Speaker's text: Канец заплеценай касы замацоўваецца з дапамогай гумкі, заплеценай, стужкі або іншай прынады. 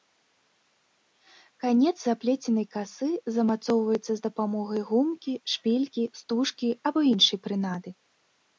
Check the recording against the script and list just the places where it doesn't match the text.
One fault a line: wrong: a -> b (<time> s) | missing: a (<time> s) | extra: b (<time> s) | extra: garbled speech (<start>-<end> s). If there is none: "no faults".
wrong: заплеценай -> шпількі (5.6 s)